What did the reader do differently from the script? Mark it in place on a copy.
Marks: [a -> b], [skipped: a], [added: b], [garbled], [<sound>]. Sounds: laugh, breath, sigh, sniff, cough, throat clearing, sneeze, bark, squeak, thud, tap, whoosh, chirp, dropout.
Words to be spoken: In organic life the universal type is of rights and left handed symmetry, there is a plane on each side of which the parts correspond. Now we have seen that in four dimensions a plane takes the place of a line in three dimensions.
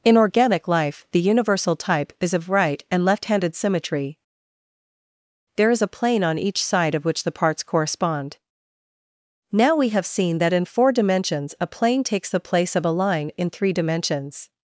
In organic life the universal type is of [rights -> right] and left handed symmetry, there is a plane on each side of which the parts correspond. Now we have seen that in four dimensions a plane takes the place of a line in three dimensions.